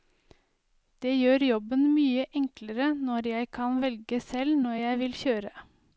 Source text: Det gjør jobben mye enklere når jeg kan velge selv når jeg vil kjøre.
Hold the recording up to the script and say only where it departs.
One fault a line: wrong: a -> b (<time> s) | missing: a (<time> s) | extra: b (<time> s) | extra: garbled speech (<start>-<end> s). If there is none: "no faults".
no faults